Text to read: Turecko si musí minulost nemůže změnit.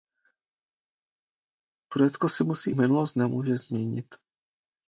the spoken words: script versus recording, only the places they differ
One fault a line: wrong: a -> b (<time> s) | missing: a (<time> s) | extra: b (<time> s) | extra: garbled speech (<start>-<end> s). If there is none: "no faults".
no faults